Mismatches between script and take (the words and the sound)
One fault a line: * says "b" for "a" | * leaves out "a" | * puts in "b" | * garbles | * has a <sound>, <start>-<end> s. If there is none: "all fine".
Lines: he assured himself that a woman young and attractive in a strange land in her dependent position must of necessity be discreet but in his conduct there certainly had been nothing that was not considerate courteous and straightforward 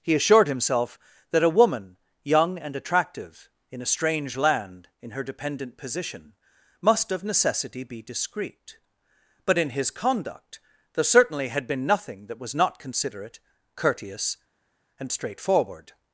all fine